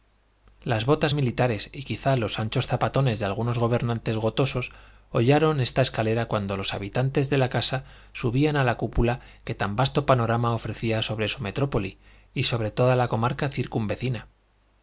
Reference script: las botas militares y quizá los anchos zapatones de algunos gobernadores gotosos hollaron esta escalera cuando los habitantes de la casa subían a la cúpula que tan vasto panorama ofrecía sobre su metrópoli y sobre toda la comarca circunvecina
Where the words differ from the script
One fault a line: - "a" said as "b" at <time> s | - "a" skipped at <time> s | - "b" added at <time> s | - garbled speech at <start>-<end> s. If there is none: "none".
none